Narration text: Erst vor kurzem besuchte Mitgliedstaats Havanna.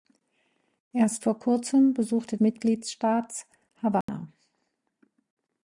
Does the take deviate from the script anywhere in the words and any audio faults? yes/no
yes